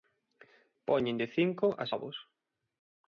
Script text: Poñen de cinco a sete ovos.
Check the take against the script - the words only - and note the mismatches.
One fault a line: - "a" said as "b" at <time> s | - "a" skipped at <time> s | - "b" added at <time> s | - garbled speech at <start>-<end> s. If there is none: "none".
- "sete" skipped at 1.9 s